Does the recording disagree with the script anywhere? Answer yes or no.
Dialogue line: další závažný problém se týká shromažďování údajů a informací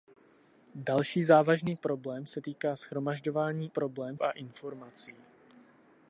yes